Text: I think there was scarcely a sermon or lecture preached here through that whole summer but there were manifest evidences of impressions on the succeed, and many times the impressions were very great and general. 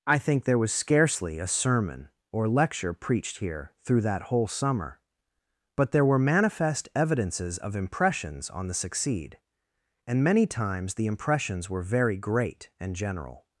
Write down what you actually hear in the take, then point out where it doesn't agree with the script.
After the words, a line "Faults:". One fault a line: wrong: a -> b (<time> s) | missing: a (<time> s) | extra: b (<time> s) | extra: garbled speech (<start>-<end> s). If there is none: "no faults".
I think there was scarcely a sermon or lecture preached here through that whole summer but there were manifest evidences of impressions on the succeed, and many times the impressions were very great and general.
Faults:
no faults